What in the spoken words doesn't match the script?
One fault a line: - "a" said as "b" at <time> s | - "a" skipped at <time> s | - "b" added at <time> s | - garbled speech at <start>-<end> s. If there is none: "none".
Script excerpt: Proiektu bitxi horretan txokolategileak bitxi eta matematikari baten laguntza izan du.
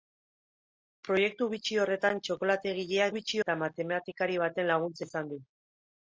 none